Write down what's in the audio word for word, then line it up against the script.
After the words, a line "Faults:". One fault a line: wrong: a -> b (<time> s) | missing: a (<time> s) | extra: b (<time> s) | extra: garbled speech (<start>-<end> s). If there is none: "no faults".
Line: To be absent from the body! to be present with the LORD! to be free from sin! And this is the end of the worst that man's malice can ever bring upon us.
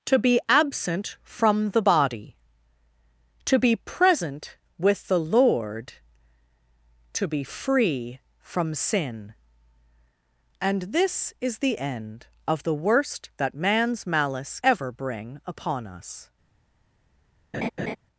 To be absent from the body! to be present with the LORD! to be free from sin! And this is the end of the worst that man's malice ever bring upon us.
Faults:
missing: can (14.6 s)